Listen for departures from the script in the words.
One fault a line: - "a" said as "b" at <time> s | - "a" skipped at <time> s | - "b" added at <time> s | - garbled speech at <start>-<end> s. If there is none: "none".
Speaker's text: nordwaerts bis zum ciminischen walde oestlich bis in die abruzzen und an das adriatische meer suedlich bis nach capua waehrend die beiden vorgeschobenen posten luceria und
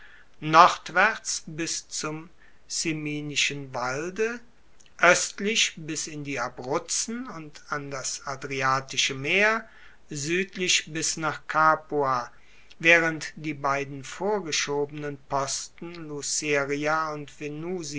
none